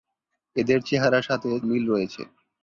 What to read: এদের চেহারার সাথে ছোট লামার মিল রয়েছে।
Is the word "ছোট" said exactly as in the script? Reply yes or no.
no